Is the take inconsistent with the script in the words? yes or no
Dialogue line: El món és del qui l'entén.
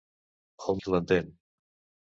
yes